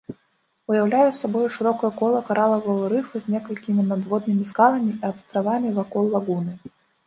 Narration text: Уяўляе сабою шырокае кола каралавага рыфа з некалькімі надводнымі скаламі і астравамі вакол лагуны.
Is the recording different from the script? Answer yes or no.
no